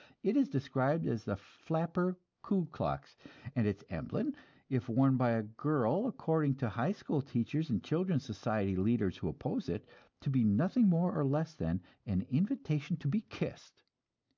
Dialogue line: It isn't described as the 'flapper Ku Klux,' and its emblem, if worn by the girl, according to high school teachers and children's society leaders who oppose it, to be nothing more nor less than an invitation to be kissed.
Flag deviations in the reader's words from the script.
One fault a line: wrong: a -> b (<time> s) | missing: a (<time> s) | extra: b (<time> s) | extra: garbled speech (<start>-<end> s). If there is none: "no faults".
wrong: isn't -> is (0.3 s)
wrong: the -> a (5.3 s)